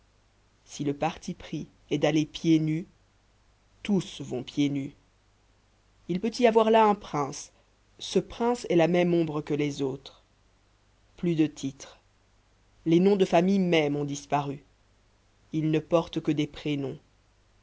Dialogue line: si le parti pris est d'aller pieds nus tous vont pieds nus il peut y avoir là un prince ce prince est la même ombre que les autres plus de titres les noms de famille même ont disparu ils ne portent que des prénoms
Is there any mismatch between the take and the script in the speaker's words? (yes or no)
no